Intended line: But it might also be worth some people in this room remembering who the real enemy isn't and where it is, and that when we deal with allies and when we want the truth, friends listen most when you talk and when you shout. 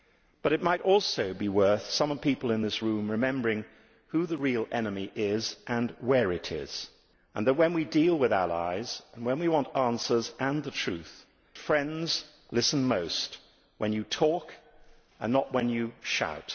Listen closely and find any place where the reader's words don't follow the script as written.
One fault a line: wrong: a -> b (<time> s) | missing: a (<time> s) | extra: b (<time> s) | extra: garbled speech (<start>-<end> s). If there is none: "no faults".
wrong: isn't -> is (5.1 s)
extra: answers and (9.7 s)
extra: not (15.3 s)